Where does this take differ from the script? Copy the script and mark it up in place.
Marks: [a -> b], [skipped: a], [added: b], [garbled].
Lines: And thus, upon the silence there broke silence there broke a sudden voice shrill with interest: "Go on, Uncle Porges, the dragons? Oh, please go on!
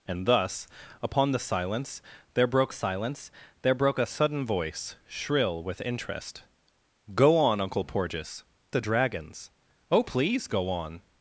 And thus, upon the silence there broke silence there broke a sudden voice shrill with interest: "Go on, Uncle Porges, the dragons? Oh, please go on!